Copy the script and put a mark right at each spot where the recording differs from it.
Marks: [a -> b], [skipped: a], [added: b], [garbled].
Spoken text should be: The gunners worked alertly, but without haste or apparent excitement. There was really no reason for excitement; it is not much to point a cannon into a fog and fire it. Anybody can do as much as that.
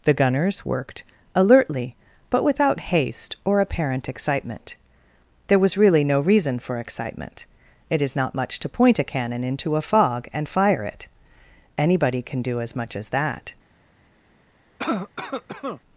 The gunners worked alertly, but without haste or apparent excitement. There was really no reason for excitement; it is not much to point a cannon into a fog and fire it. Anybody can do as much as that.